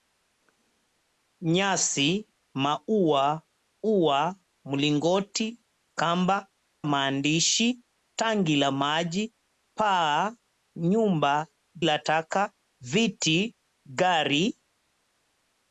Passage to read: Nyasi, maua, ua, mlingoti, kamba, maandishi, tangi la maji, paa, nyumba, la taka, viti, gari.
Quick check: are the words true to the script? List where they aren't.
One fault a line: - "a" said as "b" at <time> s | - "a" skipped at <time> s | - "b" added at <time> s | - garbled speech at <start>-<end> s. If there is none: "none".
none